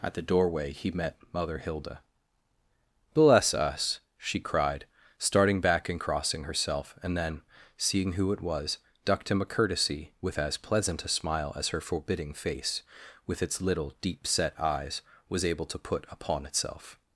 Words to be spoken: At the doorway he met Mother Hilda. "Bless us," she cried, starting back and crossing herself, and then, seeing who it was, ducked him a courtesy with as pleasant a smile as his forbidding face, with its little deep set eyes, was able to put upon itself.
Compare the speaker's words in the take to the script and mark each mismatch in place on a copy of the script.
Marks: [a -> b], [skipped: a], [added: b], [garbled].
At the doorway he met Mother Hilda. "Bless us," she cried, starting back and crossing herself, and then, seeing who it was, ducked him a courtesy with as pleasant a smile as [his -> her] forbidding face, with its little deep set eyes, was able to put upon itself.